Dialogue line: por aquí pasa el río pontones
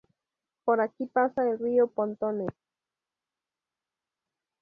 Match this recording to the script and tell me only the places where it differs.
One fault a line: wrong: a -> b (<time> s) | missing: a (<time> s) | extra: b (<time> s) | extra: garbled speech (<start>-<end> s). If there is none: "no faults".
no faults